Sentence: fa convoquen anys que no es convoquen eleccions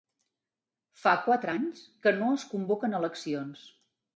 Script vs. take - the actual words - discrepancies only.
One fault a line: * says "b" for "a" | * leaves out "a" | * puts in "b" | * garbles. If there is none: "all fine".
* says "quatre" for "convoquen"